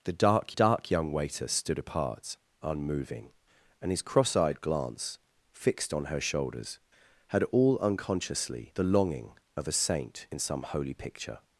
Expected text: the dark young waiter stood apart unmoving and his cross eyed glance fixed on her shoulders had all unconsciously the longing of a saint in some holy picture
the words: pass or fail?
fail